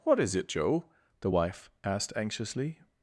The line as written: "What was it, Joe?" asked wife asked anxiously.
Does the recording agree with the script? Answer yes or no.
no